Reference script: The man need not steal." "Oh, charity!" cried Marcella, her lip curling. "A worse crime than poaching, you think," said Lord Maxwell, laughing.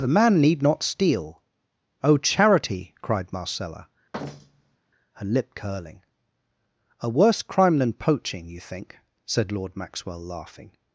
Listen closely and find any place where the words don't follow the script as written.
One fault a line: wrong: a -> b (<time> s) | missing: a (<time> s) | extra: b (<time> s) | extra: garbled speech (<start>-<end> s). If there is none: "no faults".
no faults